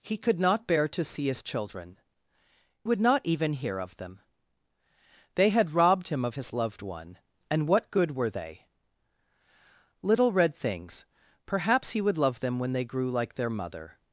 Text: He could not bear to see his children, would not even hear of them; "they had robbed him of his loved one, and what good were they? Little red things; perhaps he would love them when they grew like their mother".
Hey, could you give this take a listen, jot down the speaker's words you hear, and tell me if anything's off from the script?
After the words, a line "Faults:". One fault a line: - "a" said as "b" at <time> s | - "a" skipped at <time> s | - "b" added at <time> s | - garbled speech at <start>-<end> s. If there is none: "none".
He could not bear to see his children, would not even hear of them; "they had robbed him of his loved one, and what good were they? Little red things; perhaps he would love them when they grew like their mother".
Faults:
none